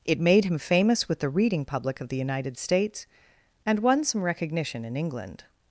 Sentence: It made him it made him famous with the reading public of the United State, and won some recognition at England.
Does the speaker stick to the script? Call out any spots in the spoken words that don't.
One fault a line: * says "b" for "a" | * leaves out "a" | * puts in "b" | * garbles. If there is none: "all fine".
* leaves out "it made him"
* says "States" for "State"
* says "in" for "at"